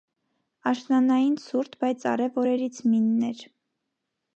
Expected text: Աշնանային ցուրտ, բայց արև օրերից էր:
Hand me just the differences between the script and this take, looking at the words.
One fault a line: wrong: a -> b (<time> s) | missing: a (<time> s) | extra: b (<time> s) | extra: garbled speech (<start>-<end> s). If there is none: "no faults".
extra: մինն (3.0 s)